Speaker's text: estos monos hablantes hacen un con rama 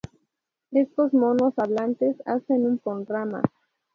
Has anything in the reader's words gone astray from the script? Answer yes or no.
no